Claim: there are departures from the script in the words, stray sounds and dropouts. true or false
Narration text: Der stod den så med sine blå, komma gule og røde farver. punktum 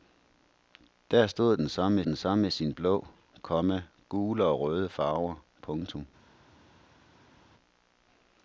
true